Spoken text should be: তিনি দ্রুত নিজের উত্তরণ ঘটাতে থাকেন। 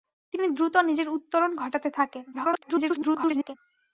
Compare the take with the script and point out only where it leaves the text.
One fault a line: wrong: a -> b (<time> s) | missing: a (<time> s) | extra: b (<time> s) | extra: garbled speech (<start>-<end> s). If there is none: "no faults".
extra: garbled speech (2.3-3.6 s)